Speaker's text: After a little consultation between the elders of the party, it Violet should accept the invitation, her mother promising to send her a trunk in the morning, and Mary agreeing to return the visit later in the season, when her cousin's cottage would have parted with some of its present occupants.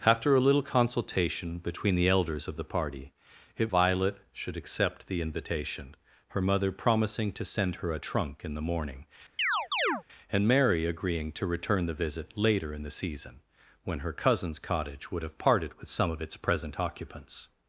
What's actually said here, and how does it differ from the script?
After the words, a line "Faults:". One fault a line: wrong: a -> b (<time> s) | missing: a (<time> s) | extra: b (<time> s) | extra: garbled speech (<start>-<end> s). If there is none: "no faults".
After a little consultation between the elders of the party, it Violet should accept the invitation, her mother promising to send her a trunk in the morning, and Mary agreeing to return the visit later in the season, when her cousin's cottage would have parted with some of its present occupants.
Faults:
no faults